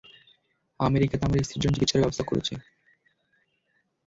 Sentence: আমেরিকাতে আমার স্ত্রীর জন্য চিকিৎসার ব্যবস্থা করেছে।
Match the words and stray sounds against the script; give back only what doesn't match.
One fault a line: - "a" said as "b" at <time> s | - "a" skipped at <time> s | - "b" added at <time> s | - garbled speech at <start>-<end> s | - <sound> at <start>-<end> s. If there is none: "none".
none